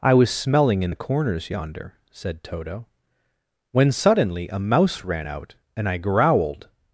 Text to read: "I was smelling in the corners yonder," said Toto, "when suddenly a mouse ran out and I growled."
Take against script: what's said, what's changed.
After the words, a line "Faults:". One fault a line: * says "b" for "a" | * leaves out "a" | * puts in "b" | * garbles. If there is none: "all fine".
"I was smelling in the corners yonder," said Toto, "when suddenly a mouse ran out and I growled."
Faults:
all fine